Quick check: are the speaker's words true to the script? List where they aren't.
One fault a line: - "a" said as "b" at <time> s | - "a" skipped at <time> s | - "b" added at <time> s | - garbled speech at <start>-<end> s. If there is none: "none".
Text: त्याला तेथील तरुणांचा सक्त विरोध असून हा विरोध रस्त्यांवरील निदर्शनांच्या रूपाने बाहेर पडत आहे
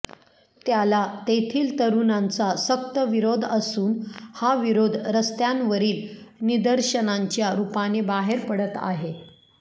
none